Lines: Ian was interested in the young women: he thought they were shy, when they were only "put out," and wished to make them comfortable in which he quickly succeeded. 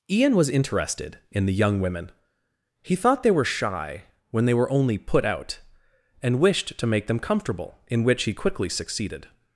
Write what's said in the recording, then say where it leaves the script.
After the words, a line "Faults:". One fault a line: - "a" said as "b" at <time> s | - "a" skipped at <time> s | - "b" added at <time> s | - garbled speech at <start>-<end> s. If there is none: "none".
Ian was interested in the young women: he thought they were shy, when they were only "put out," and wished to make them comfortable in which he quickly succeeded.
Faults:
none